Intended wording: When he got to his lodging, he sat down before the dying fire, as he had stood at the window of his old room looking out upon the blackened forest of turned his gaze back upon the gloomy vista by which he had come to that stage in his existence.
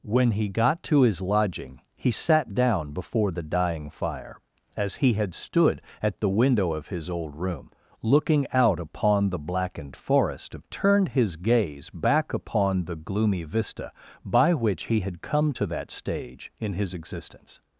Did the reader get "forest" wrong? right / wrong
right